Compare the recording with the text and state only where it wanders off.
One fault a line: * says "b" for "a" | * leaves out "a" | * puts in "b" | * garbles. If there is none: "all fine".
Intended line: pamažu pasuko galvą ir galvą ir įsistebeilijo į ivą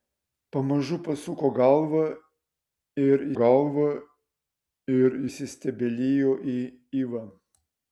all fine